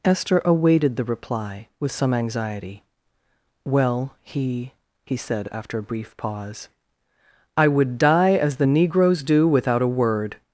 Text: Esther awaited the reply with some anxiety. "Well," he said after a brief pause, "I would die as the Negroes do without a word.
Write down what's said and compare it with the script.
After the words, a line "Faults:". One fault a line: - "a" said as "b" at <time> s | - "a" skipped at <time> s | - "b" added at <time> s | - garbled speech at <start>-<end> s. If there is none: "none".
Esther awaited the reply with some anxiety. "Well," he he said after a brief pause, "I would die as the Negroes do without a word.
Faults:
- "he" added at 5.0 s